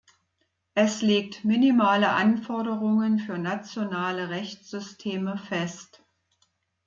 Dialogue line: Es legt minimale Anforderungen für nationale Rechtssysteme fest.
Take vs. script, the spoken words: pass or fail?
pass